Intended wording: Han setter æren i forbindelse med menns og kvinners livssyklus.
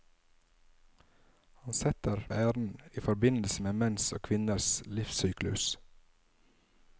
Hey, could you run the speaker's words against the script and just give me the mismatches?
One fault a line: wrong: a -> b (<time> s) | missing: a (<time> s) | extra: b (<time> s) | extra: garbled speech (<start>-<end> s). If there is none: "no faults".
no faults